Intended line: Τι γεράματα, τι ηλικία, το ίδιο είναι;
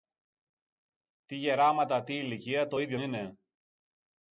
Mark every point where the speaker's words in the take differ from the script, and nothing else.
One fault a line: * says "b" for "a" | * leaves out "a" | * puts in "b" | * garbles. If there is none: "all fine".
all fine